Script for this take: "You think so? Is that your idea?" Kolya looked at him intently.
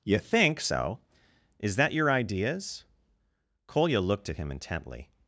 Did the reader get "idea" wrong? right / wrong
wrong